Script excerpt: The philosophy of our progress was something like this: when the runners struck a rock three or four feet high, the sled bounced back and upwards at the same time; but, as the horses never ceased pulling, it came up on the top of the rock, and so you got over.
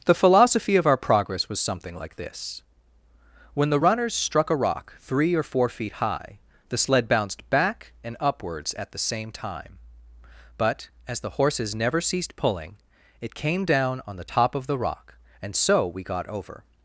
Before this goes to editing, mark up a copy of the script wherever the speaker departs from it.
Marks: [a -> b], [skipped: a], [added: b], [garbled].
The philosophy of our progress was something like this: when the runners struck a rock three or four feet high, the sled bounced back and upwards at the same time; but, as the horses never ceased pulling, it came [up -> down] on the top of the rock, and so [you -> we] got over.